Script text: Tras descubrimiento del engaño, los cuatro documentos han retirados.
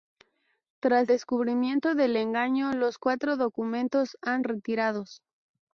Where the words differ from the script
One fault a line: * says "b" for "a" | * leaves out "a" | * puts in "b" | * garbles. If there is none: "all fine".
all fine